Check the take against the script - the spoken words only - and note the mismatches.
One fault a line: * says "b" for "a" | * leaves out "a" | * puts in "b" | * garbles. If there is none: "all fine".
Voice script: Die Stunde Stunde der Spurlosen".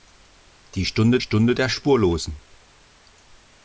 all fine